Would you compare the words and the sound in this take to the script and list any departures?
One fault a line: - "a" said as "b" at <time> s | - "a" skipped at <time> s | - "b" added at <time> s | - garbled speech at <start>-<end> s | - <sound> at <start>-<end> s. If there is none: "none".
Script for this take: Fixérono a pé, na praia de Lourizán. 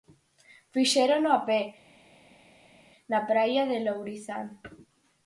none